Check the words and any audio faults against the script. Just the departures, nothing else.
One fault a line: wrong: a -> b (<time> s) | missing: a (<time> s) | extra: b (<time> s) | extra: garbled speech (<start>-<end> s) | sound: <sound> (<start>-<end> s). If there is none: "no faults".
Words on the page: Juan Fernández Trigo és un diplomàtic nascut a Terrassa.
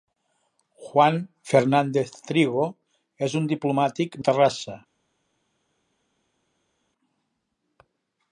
missing: nascut (4.2 s)